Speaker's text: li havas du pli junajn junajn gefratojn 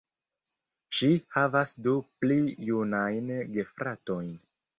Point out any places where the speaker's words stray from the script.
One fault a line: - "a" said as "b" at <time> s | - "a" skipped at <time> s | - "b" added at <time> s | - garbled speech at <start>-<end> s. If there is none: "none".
- "li" said as "ŝi" at 1.0 s
- "junajn" skipped at 3.3 s